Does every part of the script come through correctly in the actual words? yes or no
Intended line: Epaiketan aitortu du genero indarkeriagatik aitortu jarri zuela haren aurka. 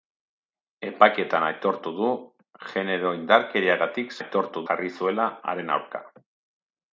yes